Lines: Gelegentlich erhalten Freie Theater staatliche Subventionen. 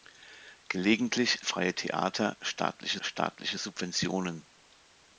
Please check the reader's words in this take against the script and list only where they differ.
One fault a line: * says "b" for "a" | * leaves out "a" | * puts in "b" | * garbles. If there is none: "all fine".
* leaves out "erhalten"
* puts in "staatliche"